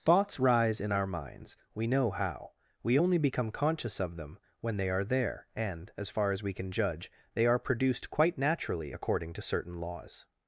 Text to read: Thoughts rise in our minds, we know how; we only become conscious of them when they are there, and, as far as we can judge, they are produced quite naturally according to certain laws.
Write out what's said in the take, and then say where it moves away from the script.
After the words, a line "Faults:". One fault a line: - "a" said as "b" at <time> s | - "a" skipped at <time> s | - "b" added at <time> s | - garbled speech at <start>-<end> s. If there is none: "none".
Thoughts rise in our minds, we know how; we only become conscious of them when they are there, and, as far as we can judge, they are produced quite naturally according to certain laws.
Faults:
none